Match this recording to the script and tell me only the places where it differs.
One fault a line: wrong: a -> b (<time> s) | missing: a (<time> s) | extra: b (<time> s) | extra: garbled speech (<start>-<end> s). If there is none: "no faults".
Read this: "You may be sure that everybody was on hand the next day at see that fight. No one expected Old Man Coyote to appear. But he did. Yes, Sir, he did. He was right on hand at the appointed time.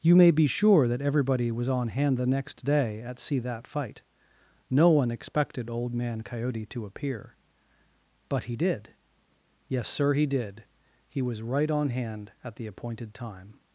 no faults